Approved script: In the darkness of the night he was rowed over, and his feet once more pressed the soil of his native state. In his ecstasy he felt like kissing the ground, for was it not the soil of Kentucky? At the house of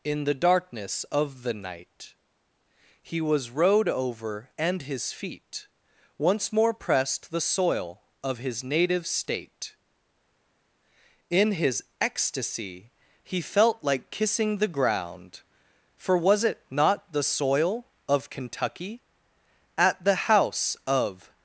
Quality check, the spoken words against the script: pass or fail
pass